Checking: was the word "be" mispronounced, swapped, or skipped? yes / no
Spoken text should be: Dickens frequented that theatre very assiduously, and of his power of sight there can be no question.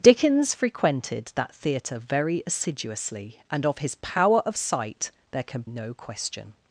yes